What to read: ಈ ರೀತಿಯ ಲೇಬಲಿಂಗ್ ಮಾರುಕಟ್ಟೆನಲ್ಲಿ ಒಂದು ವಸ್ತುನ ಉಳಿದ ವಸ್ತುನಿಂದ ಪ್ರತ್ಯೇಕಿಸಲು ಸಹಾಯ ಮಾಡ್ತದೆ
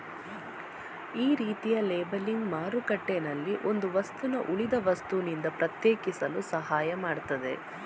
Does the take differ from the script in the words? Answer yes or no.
no